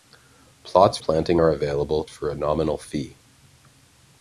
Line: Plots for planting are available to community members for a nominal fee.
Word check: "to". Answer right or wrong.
wrong